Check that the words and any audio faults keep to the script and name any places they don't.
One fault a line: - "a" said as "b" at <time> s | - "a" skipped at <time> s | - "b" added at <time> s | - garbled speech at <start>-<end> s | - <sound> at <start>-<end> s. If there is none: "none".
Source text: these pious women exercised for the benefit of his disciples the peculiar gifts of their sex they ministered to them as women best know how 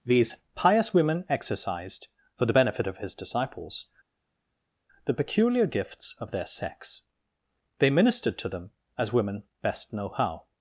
none